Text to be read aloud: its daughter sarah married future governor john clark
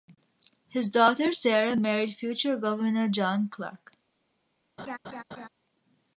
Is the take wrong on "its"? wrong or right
wrong